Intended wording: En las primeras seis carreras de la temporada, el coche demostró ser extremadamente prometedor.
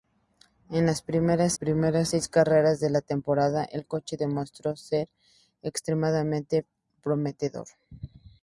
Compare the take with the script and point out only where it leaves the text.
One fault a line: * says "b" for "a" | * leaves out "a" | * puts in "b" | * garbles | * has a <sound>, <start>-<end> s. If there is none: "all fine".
* puts in "primeras"